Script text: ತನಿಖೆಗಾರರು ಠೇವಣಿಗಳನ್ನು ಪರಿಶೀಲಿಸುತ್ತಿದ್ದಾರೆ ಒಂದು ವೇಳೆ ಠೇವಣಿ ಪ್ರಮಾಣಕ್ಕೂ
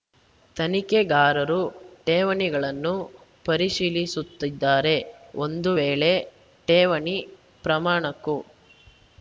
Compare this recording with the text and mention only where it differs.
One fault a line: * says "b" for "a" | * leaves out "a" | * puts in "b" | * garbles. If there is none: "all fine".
all fine